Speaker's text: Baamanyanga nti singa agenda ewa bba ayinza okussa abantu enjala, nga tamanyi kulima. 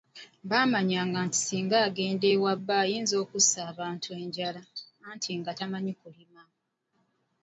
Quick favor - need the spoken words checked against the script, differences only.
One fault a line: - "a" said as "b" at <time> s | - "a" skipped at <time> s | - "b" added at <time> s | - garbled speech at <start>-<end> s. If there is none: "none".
- "anti" added at 5.1 s